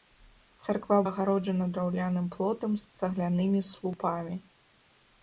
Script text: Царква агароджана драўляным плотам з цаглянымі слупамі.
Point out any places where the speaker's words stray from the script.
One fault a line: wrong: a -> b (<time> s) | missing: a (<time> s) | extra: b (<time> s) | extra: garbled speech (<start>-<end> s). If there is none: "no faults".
no faults